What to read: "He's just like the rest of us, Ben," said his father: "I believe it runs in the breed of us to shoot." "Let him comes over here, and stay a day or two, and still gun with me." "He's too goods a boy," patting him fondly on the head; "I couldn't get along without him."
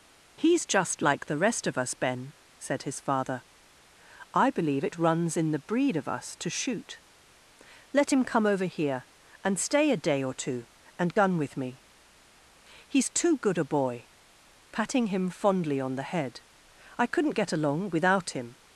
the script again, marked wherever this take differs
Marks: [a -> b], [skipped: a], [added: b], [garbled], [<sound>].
"He's just like the rest of us, Ben," said his father: "I believe it runs in the breed of us to shoot." "Let him [comes -> come] over here, and stay a day or two, and [skipped: still] gun with me." "He's too [goods -> good] a boy," patting him fondly on the head; "I couldn't get along without him."